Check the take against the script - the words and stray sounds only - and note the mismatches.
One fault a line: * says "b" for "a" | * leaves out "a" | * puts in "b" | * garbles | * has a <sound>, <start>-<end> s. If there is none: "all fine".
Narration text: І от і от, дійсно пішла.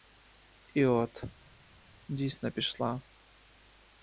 * leaves out "і от"